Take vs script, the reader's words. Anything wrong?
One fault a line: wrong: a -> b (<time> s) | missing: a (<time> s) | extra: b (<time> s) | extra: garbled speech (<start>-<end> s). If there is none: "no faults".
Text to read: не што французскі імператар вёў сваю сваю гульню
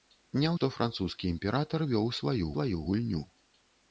no faults